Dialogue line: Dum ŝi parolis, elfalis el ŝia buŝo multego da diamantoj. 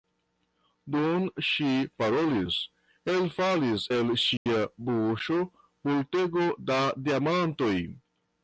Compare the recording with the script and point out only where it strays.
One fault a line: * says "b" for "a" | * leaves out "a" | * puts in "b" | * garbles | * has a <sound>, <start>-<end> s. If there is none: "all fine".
* has a dropout, 4.4-4.5 s